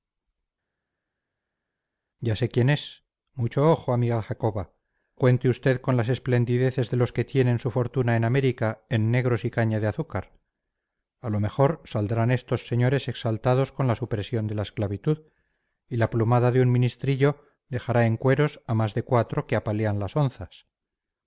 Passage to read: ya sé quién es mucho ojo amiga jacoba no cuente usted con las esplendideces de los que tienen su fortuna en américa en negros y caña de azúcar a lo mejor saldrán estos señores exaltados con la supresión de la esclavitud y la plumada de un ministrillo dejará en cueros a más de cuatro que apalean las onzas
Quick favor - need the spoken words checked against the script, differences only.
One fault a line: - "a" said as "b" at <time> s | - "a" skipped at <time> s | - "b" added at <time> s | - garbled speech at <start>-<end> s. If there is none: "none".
- "no" skipped at 4.7 s